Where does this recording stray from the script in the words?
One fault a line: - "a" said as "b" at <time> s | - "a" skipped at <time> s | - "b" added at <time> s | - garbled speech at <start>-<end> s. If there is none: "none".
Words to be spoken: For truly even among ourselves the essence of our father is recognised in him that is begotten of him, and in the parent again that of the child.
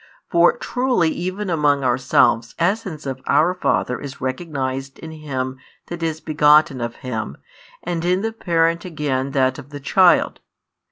- "the" skipped at 2.5 s